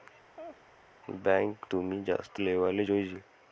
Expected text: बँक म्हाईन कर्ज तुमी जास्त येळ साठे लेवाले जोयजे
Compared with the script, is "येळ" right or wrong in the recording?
wrong